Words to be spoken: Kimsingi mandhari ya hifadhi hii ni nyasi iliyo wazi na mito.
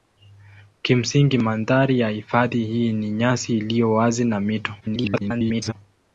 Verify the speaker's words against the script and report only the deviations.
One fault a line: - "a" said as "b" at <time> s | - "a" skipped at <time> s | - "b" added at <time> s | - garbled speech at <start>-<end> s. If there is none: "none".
- garbled speech at 4.8-5.7 s